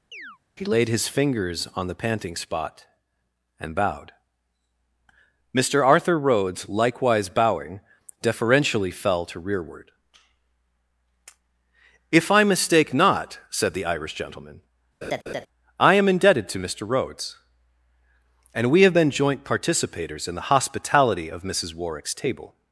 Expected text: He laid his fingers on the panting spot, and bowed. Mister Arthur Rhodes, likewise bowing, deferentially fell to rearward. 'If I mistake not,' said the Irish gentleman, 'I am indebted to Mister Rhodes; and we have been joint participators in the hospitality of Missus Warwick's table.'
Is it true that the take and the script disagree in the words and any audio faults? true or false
true